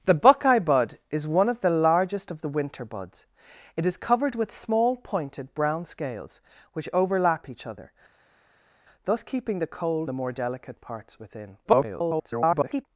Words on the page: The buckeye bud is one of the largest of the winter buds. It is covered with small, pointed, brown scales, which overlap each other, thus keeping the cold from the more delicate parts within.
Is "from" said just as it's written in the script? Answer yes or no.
no